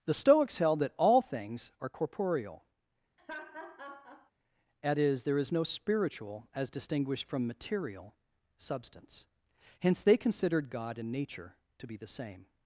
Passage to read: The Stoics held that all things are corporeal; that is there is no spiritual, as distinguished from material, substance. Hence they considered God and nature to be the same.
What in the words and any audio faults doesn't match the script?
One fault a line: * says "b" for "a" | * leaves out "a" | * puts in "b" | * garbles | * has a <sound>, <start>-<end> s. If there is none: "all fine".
* has a laugh, 3.2-4.3 s